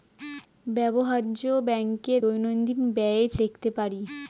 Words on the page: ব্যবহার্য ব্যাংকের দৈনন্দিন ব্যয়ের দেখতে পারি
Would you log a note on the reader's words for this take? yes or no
no